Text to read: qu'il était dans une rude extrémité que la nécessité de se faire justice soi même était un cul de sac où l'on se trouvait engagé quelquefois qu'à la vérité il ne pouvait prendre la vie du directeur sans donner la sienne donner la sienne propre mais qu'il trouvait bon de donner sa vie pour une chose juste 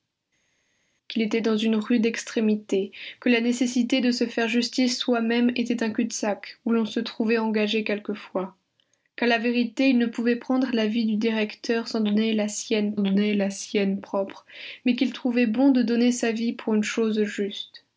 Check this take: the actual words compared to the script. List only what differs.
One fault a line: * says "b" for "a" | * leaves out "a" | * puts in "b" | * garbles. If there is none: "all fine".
all fine